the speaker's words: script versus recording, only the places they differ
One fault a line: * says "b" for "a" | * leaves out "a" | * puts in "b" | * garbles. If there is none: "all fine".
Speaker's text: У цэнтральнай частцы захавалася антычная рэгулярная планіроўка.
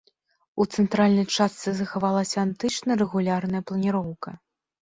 all fine